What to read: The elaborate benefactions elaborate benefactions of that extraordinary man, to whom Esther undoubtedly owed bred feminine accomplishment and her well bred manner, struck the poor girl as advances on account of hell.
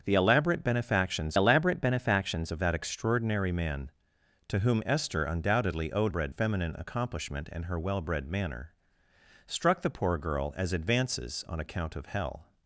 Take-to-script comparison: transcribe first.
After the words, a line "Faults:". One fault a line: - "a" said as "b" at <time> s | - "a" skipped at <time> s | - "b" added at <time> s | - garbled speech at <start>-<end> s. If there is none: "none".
The elaborate benefactions elaborate benefactions of that extraordinary man, to whom Esther undoubtedly owed bred feminine accomplishment and her well bred manner, struck the poor girl as advances on account of hell.
Faults:
none